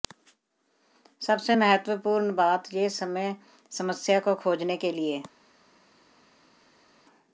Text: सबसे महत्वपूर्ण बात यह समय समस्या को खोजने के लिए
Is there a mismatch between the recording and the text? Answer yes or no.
no